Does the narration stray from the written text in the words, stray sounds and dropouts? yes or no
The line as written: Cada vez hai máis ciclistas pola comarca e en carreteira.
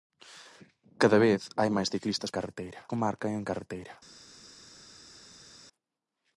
yes